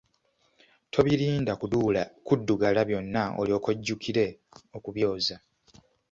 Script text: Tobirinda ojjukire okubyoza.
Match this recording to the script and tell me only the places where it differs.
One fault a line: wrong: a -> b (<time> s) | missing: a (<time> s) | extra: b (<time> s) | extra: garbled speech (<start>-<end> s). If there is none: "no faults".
extra: kuddugala byonna olyoke (2.3 s)